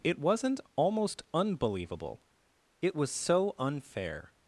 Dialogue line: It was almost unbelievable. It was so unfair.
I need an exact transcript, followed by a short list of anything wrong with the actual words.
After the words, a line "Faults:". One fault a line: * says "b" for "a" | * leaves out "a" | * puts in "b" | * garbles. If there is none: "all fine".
It wasn't almost unbelievable. It was so unfair.
Faults:
* says "wasn't" for "was"